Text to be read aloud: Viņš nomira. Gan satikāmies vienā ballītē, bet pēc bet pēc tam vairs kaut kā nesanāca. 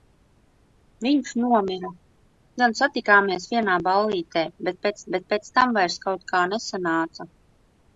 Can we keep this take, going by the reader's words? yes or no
yes